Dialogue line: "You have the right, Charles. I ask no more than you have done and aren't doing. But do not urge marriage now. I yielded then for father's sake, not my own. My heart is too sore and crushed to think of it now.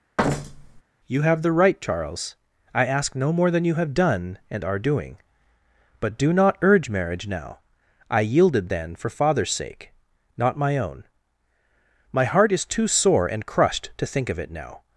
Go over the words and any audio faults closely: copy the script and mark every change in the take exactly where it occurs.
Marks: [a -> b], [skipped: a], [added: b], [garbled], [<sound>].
[thud] "You have the right, Charles. I ask no more than you have done and [aren't -> are] doing. But do not urge marriage now. I yielded then for father's sake, not my own. My heart is too sore and crushed to think of it now.